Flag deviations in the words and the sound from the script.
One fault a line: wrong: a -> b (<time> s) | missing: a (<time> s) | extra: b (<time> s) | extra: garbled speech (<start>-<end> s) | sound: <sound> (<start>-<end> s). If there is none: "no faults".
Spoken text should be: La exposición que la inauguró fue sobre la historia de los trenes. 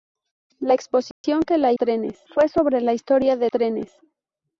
sound: dropout (1.1-1.2 s)
wrong: inauguró -> trenes (1.7 s)
missing: los (3.5 s)